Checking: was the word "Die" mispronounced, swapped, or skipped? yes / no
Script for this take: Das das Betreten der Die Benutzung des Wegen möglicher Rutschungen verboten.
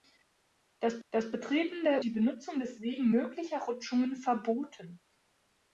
no